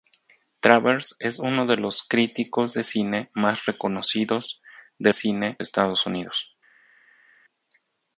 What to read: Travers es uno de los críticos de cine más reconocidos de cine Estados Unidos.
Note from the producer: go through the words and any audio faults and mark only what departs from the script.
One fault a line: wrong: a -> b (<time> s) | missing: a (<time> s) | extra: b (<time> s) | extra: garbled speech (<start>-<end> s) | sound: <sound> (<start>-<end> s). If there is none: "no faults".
no faults